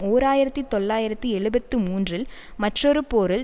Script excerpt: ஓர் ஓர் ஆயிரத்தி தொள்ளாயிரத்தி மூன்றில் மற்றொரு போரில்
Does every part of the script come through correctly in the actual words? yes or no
no